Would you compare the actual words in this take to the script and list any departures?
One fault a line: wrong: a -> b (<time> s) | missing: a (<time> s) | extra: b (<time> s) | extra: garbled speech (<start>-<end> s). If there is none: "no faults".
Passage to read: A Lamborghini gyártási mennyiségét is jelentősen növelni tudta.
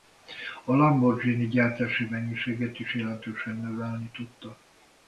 no faults